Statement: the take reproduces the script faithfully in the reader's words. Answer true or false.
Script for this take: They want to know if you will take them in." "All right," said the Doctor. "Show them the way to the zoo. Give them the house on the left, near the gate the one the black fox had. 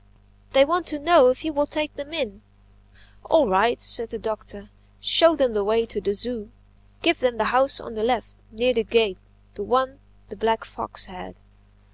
true